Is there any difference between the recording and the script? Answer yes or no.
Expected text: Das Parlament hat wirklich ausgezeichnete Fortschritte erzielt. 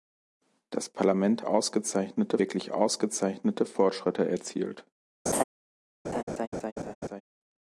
yes